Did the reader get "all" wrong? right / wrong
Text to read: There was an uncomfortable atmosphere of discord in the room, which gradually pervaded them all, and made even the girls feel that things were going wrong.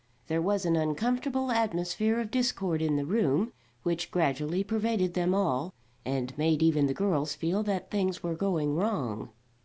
right